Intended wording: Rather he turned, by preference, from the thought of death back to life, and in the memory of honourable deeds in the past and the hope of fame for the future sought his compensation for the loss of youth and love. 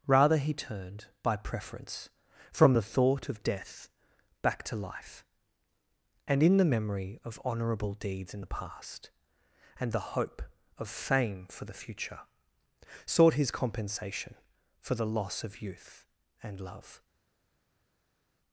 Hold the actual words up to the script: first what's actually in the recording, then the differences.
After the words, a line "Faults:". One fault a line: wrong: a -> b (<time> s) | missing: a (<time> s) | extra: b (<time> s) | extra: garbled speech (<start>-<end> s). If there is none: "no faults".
Rather he turned, by preference, from the thought of death back to life, and in the memory of honourable deeds in the past and the hope of fame for the future sought his compensation for the loss of youth and love.
Faults:
no faults